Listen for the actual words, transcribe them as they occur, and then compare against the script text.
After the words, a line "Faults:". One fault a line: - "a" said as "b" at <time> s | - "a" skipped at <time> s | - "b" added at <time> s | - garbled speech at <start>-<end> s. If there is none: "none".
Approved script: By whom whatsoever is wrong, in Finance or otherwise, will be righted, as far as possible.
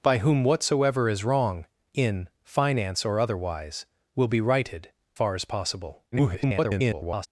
By whom whatsoever is wrong, in Finance or otherwise, will be righted, far as possible. [garbled]
Faults:
- "as" skipped at 4.9 s
- garbled speech at 6.1-7.3 s